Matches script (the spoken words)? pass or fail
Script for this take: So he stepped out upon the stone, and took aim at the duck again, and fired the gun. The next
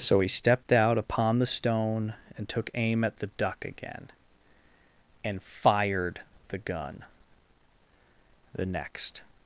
pass